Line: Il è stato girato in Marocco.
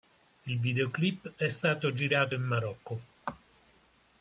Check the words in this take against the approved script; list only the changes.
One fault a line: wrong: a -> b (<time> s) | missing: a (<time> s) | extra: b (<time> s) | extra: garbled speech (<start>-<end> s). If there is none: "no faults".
extra: videoclip (0.6 s)